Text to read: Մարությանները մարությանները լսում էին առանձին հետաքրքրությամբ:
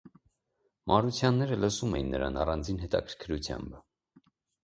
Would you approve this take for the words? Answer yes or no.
no